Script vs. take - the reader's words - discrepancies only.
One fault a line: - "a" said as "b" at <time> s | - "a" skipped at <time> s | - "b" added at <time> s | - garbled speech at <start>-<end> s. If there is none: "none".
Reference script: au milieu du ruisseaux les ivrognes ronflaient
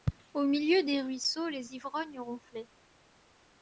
- "du" said as "des" at 0.8 s